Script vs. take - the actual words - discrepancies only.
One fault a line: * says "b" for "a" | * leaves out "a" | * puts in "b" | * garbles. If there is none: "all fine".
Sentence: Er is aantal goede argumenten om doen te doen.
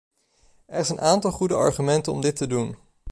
* puts in "een"
* says "dit" for "doen"